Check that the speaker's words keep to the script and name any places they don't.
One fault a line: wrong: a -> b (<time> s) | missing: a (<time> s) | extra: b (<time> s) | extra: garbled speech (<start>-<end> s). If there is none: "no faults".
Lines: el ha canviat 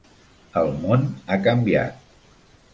extra: món (0.8 s)